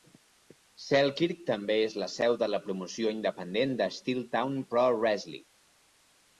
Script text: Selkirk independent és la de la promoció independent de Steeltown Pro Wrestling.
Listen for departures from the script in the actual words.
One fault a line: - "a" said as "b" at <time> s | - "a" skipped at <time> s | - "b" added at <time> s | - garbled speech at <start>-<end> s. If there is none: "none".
- "independent" said as "també" at 1.5 s
- "seu" added at 2.1 s